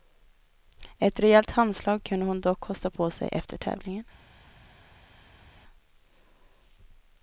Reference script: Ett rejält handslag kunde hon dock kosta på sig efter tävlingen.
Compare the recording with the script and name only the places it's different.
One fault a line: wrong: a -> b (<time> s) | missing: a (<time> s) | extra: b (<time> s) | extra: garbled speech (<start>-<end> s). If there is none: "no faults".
no faults